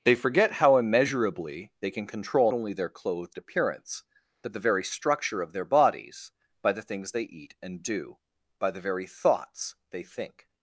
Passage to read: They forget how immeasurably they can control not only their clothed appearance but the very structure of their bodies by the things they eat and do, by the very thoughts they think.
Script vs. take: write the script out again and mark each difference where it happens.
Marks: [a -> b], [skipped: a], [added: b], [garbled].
They forget how immeasurably they can control [skipped: not] only their clothed appearance but the very structure of their bodies by the things they eat and do, by the very thoughts they think.